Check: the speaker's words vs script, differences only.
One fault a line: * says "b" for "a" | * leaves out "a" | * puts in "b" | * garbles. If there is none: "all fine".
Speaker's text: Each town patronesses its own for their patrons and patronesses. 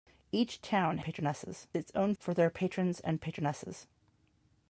all fine